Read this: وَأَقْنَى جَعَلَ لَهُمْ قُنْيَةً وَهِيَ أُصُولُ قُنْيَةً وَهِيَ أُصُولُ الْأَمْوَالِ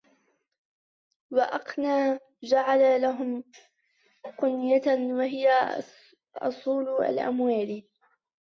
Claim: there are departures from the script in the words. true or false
true